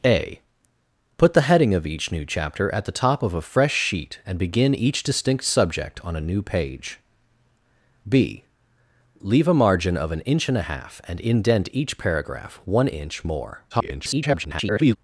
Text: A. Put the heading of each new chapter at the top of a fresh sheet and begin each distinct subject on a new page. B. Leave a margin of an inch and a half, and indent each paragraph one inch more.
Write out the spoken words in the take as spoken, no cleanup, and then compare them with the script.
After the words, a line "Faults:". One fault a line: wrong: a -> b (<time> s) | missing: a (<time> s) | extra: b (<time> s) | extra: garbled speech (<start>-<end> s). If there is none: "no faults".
A. Put the heading of each new chapter at the top of a fresh sheet and begin each distinct subject on a new page. B. Leave a margin of an inch and a half, and indent each paragraph one inch more. [garbled]
Faults:
extra: garbled speech (13.7-15.0 s)